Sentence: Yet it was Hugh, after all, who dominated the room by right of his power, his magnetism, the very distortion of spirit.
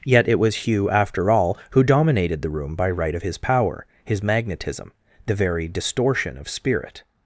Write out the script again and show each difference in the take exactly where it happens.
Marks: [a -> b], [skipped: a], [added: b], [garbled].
Yet it was Hugh, after all, who dominated the room by right of his power, his magnetism, the very distortion of spirit.